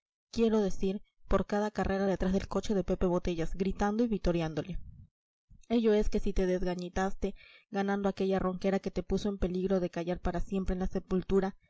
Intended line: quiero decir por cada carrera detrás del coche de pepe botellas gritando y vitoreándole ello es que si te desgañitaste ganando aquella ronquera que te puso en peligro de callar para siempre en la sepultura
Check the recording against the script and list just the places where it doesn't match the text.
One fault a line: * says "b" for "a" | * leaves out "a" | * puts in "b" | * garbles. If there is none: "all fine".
all fine